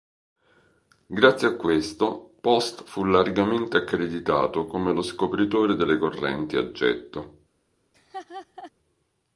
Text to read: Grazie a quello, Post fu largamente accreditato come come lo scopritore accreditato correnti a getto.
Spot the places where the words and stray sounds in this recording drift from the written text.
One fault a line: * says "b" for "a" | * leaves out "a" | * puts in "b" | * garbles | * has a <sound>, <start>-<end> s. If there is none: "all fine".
* says "questo" for "quello"
* leaves out "come"
* says "delle" for "accreditato"
* has a laugh, 7.9-8.7 s